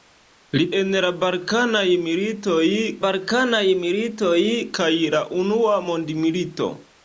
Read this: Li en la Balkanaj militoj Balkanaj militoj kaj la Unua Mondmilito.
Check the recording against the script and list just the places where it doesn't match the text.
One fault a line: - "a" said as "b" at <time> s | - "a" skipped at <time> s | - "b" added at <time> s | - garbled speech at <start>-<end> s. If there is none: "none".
none